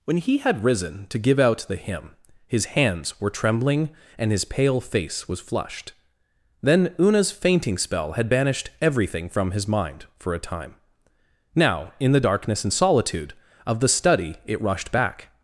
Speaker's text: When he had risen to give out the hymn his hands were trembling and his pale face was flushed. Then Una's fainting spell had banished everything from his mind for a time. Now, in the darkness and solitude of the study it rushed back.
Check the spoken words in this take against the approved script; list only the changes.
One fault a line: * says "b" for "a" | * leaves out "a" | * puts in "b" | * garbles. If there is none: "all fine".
all fine